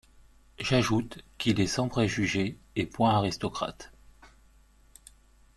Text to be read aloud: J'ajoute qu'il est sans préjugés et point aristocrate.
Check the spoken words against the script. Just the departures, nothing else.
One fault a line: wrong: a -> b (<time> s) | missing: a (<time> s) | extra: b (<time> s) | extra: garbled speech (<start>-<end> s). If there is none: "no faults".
no faults